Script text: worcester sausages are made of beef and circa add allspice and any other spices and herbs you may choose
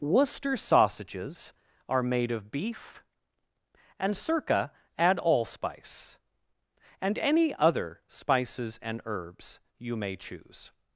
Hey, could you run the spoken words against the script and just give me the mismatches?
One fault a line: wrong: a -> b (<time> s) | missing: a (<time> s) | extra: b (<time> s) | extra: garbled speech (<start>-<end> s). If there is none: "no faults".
no faults